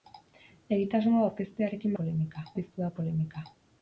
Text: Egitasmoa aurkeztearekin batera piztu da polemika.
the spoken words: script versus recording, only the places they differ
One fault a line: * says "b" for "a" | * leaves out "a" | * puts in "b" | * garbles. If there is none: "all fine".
* says "polemika" for "batera"